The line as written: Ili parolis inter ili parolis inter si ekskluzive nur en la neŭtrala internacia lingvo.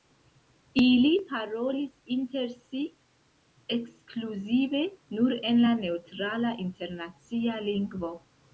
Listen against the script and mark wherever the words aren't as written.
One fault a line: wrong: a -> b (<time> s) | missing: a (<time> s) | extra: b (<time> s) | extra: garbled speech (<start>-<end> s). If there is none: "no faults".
missing: ili parolis inter (2.5 s)